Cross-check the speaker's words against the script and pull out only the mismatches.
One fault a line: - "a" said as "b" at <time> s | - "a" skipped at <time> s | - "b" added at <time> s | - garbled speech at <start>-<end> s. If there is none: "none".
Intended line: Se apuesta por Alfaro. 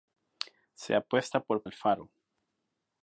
none